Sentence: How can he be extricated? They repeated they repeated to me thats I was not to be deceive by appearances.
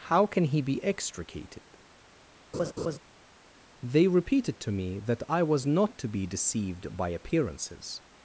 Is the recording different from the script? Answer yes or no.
yes